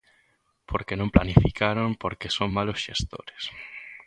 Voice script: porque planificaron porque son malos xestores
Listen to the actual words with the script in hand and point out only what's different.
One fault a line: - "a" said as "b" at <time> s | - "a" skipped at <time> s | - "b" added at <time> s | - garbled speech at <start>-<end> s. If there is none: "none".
- "non" added at 1.0 s